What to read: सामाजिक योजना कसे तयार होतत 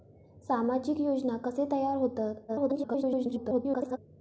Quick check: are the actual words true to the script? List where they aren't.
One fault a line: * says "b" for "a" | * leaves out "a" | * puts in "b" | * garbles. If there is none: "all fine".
* garbles